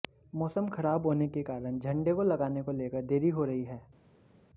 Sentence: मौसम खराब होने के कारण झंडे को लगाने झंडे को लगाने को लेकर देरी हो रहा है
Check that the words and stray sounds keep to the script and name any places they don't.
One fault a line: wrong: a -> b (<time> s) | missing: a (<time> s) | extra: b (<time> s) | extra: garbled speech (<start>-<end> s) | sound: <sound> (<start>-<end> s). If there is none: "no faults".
missing: झंडे (2.6 s)
missing: लगाने को (2.7 s)
wrong: रहा -> रही (3.4 s)